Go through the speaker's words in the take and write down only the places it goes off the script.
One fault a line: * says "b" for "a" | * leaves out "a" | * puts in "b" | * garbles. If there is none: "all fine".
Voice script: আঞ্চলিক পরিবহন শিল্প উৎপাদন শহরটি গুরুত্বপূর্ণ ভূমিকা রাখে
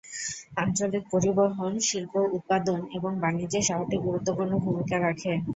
* puts in "এবং বাণিজ্যে"